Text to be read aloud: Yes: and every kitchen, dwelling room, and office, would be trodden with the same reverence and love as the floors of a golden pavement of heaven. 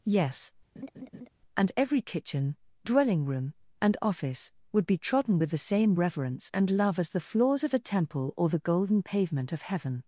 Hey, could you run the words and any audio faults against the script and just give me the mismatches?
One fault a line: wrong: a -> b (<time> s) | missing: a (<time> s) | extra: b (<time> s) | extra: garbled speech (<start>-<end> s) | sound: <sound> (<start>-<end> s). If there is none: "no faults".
sound: laugh (0.8-1.3 s)
extra: temple or the (7.8 s)